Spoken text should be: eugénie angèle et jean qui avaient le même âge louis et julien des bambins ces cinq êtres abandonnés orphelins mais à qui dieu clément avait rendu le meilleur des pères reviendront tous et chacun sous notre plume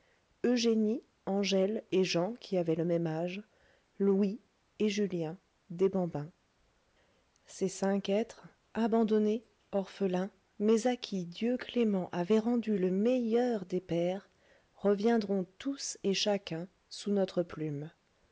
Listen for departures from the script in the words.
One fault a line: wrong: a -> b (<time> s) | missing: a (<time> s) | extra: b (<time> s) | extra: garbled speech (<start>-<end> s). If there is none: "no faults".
no faults